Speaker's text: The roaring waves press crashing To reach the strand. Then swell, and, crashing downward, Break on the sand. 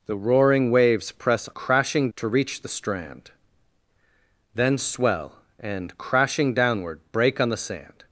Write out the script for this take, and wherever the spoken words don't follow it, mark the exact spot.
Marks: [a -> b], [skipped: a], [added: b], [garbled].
The roaring waves press crashing To reach the strand. Then swell, and, crashing downward, Break on the sand.